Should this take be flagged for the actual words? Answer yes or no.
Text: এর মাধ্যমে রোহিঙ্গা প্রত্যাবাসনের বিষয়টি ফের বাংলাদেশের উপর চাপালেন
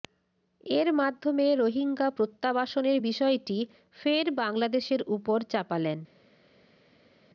no